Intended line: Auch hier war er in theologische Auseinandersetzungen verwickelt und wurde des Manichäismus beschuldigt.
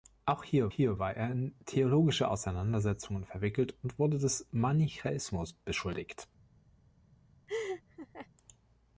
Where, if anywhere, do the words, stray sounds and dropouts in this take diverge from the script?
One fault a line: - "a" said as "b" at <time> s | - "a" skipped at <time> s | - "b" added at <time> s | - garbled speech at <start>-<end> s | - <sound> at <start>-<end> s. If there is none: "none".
- "hier" added at 0.7 s
- laugh at 7.5-8.3 s